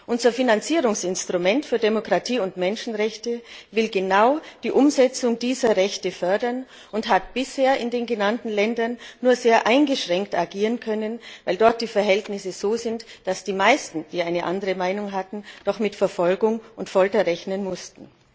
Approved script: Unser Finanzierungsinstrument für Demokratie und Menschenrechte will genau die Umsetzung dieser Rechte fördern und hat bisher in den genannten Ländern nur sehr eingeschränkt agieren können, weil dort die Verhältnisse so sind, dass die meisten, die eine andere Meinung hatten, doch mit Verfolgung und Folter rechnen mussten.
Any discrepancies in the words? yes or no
no